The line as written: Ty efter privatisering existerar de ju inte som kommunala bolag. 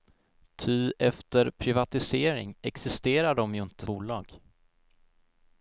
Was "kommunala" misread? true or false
true